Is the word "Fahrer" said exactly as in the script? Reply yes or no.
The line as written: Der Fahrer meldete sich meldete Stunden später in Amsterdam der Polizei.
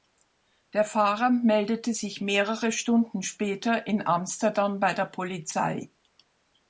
yes